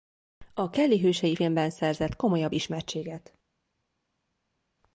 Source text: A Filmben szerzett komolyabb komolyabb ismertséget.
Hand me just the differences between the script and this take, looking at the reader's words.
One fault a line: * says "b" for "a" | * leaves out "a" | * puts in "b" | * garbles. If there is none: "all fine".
* puts in "Kelly hősei"
* leaves out "komolyabb"